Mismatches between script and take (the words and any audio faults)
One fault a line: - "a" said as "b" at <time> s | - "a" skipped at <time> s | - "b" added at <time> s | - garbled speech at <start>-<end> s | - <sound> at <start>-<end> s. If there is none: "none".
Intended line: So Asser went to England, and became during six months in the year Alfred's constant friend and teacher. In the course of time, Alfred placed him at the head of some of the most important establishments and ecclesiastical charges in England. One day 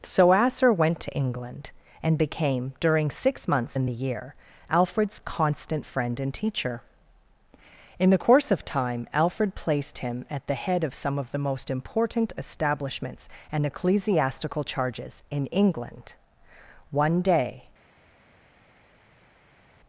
none